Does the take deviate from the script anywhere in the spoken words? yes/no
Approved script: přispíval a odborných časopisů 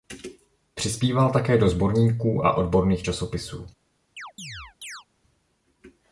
yes